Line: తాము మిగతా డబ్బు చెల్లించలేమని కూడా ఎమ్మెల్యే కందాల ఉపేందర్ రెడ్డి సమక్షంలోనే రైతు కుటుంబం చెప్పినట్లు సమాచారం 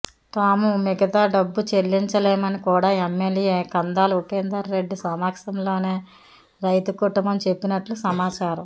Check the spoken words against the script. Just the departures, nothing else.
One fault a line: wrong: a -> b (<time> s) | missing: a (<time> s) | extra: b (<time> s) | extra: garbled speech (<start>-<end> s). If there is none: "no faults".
no faults